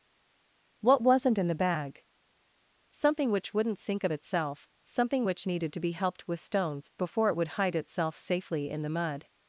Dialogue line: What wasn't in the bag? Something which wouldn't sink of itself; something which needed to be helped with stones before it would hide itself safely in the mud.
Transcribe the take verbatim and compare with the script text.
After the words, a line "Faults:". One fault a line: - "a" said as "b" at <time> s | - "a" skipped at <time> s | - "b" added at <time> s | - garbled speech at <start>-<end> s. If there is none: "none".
What wasn't in the bag? Something which wouldn't sink of itself; something which needed to be helped with stones before it would hide itself safely in the mud.
Faults:
none